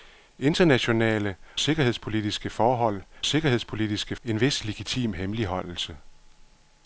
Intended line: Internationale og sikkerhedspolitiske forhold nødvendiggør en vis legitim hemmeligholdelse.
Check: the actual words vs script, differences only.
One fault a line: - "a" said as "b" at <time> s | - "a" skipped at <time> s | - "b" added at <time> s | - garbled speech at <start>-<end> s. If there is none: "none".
- "og" skipped at 1.4 s
- "nødvendiggør" said as "sikkerhedspolitiske" at 3.3 s